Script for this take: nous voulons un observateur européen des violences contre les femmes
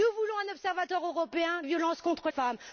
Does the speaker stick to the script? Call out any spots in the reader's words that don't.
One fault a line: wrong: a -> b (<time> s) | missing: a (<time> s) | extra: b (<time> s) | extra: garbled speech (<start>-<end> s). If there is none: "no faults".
missing: des (1.6 s)
missing: les (2.3 s)